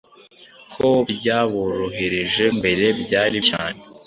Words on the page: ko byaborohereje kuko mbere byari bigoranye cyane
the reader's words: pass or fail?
fail